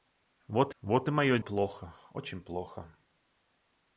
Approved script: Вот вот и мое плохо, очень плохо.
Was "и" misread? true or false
false